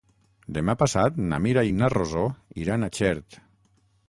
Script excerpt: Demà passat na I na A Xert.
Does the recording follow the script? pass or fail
fail